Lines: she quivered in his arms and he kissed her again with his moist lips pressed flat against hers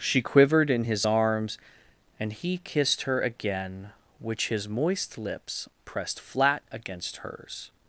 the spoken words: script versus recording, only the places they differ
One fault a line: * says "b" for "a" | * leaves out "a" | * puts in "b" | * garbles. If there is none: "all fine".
* says "which" for "with"